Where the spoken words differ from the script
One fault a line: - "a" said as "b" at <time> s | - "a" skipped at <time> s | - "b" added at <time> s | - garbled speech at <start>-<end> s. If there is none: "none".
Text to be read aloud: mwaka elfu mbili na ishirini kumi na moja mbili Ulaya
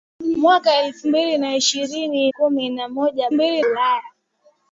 none